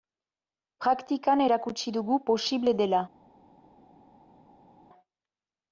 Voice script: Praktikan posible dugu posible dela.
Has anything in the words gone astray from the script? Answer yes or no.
yes